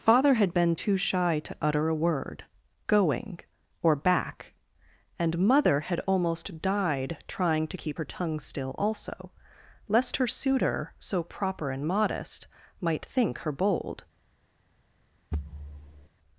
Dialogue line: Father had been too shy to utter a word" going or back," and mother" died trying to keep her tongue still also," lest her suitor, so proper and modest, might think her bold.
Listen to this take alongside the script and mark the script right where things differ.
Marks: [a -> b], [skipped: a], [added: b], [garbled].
Father had been too shy to utter a word" going or back," and mother" [added: had almost] died trying to keep her tongue still also," lest her suitor, so proper and modest, might think her bold.